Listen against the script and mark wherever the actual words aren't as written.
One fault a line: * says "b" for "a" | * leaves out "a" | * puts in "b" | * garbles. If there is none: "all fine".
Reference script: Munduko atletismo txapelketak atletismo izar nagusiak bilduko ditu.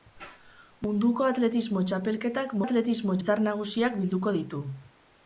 all fine